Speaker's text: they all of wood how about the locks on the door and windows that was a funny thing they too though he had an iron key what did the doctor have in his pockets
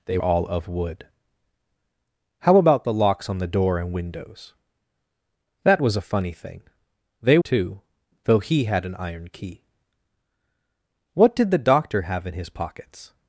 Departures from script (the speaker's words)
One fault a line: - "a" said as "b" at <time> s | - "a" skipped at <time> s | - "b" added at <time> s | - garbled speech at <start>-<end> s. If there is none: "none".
none